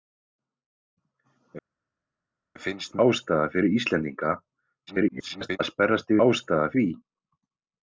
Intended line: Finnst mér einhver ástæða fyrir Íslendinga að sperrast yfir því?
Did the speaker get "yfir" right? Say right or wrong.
wrong